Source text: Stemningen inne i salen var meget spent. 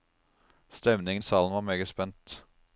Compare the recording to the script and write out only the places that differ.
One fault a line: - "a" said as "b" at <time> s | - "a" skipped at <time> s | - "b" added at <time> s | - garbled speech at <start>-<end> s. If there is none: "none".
- "inne" skipped at 1.2 s